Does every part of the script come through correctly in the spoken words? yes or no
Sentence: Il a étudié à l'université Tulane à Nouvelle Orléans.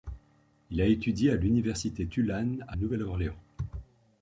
yes